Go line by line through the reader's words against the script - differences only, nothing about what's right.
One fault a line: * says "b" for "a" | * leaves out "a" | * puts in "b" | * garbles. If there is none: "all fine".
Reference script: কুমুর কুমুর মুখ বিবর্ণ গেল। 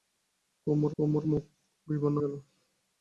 all fine